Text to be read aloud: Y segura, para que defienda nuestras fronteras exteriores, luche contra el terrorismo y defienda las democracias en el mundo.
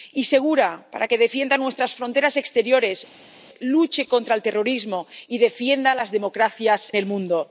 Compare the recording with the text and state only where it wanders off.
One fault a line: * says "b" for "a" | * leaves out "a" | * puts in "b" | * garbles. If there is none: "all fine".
* leaves out "en"